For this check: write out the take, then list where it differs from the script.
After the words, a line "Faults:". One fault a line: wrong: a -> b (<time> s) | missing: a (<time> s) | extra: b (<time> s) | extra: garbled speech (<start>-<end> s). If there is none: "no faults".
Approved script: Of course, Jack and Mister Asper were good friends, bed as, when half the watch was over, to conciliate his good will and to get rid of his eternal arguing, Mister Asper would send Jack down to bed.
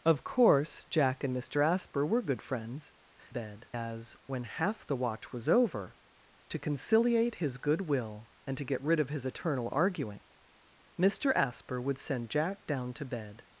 Of course, Jack and Mister Asper were good friends, bed as, when half the watch was over, to conciliate his good will and to get rid of his eternal arguing, Mister Asper would send Jack down to bed.
Faults:
no faults